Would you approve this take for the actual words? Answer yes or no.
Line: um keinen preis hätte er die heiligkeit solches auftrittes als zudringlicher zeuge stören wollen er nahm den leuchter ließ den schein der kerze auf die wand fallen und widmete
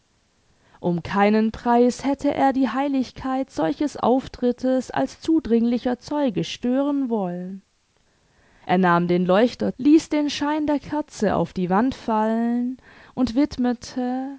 yes